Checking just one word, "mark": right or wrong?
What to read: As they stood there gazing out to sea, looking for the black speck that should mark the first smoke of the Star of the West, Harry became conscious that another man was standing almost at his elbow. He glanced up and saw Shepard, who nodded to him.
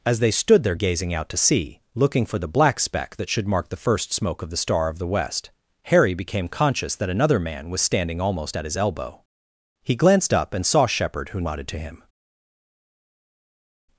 right